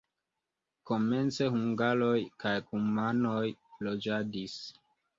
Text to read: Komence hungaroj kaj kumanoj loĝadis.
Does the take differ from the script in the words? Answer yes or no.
no